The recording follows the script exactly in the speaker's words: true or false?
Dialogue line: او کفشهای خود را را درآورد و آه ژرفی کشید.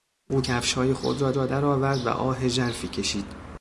true